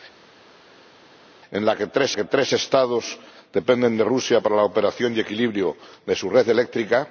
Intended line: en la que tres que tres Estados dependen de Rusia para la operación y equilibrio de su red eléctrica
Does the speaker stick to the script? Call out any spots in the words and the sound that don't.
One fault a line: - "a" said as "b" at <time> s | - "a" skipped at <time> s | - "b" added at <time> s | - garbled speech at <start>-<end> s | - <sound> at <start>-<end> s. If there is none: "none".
none